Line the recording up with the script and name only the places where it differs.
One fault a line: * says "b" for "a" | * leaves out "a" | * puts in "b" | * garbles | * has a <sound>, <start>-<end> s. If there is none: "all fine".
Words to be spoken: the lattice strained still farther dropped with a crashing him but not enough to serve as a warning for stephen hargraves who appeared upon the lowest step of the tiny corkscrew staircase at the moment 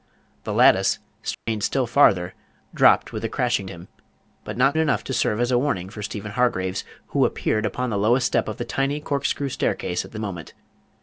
* has a dropout, 1.3-1.5 s